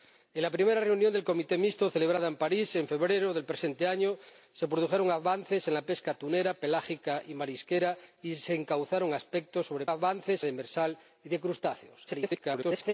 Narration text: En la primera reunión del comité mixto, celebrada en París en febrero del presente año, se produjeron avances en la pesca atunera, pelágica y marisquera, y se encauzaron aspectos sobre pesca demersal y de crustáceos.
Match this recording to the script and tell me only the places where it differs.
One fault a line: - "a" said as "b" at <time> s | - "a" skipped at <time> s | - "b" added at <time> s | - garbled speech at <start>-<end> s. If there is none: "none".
- "pesca" said as "avances" at 9.9 s
- garbled speech at 12.1-12.9 s